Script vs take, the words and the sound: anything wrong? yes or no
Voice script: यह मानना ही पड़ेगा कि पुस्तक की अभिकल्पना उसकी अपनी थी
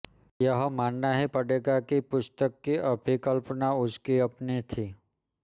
no